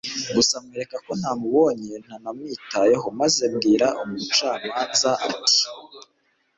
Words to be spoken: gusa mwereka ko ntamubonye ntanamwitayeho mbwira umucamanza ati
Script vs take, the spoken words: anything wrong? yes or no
yes